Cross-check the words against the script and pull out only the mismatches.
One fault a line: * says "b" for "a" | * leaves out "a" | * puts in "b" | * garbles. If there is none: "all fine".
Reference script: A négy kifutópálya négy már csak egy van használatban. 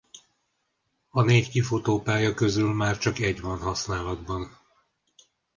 * says "közül" for "négy"